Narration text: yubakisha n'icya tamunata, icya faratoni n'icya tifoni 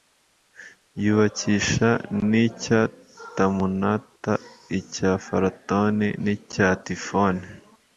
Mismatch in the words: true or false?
false